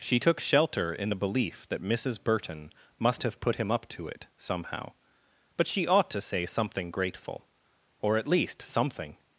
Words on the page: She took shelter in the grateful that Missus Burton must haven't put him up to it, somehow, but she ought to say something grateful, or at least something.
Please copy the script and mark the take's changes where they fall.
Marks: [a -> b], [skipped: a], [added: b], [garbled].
She took shelter in the [grateful -> belief] that Missus Burton must [haven't -> have] put him up to it, somehow, but she ought to say something grateful, or at least something.